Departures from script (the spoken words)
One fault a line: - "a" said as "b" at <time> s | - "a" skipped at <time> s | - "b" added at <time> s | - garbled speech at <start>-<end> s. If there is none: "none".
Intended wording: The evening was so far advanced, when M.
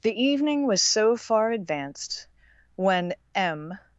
none